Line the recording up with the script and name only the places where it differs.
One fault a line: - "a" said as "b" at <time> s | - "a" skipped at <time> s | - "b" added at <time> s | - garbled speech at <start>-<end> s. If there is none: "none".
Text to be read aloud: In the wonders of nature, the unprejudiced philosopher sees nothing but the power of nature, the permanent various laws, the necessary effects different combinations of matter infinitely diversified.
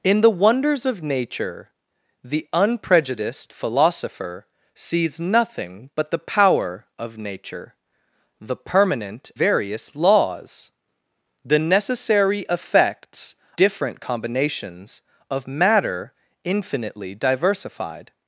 none